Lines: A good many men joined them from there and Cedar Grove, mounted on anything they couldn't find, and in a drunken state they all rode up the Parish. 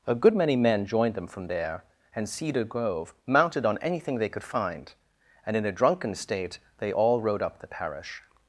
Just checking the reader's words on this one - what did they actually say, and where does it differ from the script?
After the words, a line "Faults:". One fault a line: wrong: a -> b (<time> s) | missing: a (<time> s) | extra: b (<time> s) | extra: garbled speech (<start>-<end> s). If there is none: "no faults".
A good many men joined them from there and Cedar Grove, mounted on anything they could find, and in a drunken state they all rode up the Parish.
Faults:
wrong: couldn't -> could (4.3 s)